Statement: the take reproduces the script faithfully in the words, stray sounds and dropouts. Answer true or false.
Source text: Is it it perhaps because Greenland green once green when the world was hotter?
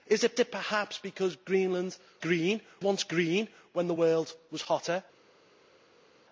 true